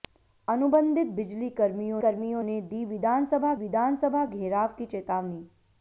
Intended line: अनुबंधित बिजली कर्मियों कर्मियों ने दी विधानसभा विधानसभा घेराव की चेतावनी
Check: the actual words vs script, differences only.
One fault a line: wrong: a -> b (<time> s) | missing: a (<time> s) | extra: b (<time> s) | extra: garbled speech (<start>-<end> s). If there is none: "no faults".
no faults